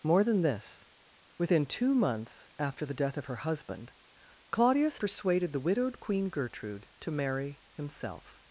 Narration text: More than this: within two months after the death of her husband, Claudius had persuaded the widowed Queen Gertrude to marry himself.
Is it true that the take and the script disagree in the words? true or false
true